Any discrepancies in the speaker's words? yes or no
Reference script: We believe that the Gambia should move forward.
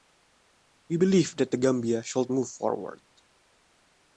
no